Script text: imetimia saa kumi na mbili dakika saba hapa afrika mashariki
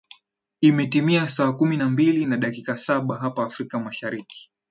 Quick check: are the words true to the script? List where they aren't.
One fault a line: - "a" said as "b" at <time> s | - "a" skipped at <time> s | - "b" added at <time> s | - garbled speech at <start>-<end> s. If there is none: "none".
- "na" added at 2.2 s